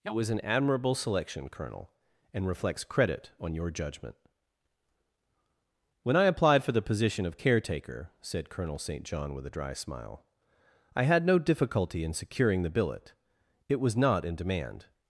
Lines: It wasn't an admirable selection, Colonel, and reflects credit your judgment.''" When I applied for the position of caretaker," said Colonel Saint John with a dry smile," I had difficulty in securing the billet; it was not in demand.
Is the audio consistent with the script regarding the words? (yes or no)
no